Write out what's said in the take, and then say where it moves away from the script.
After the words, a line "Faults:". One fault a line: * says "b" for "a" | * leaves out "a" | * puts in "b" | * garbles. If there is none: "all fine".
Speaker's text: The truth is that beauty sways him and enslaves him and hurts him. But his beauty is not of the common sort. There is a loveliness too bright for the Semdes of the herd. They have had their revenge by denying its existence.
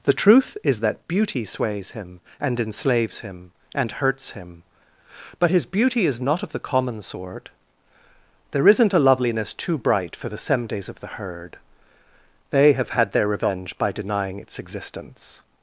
The truth is that beauty sways him and enslaves him and hurts him. But his beauty is not of the common sort. There isn't a loveliness too bright for the Semdes of the herd. They have had their revenge by denying its existence.
Faults:
* says "isn't" for "is"